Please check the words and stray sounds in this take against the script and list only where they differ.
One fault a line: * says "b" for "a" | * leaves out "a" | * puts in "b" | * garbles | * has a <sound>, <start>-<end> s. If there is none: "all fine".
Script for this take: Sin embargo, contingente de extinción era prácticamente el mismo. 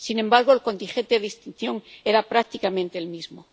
* puts in "el"